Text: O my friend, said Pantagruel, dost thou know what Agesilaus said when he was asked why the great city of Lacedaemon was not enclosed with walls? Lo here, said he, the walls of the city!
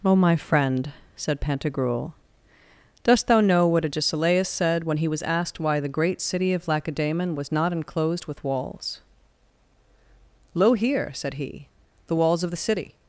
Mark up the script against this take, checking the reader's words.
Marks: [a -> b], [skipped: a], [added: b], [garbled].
O my friend, said Pantagruel, dost thou know what Agesilaus said when he was asked why the great city of Lacedaemon was not enclosed with walls? Lo here, said he, the walls of the city!